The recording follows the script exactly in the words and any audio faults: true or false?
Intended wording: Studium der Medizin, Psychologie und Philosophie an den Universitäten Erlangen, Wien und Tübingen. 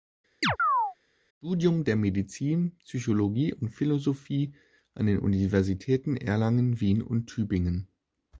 false